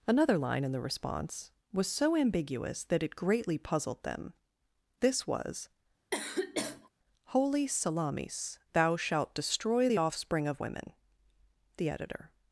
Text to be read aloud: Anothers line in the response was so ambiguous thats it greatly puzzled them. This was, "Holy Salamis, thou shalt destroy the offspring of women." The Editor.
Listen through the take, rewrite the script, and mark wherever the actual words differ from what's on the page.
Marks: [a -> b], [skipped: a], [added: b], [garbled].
[Anothers -> Another] line in the response was so ambiguous [thats -> that] it greatly puzzled them. This was, "Holy Salamis, thou shalt destroy the offspring of women." The Editor.